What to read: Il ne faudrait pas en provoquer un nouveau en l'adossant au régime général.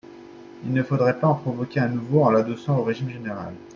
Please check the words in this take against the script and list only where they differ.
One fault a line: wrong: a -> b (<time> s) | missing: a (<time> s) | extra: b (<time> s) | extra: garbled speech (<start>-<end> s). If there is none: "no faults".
no faults